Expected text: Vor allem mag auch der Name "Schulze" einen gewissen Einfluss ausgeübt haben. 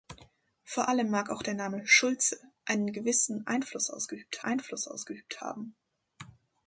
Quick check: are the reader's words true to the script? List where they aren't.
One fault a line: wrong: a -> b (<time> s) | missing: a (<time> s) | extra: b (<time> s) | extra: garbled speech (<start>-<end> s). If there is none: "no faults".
extra: Einfluss ausgeübt (4.4 s)